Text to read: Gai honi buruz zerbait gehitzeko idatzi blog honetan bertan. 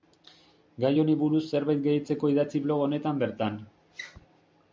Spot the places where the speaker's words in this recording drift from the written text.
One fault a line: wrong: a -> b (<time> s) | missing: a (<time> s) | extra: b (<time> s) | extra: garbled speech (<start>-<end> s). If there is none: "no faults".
no faults